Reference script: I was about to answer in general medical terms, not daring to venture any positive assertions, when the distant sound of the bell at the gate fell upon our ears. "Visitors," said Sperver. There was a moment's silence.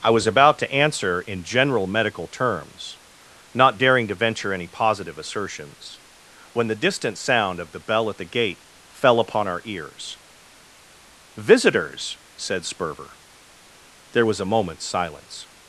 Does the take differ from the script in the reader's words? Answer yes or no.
no